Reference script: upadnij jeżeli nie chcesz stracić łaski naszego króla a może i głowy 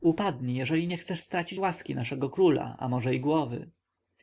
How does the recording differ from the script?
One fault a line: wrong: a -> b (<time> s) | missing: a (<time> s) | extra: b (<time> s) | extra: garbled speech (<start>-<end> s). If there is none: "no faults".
no faults